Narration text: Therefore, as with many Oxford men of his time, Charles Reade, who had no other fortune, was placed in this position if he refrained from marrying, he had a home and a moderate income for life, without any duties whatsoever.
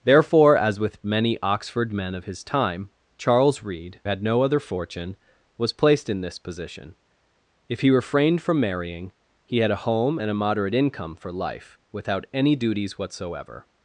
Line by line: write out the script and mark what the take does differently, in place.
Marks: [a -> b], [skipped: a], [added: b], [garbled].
Therefore, as with many Oxford men of his time, Charles Reade, [skipped: who] had no other fortune, was placed in this position if he refrained from marrying, he had a home and a moderate income for life, without any duties whatsoever.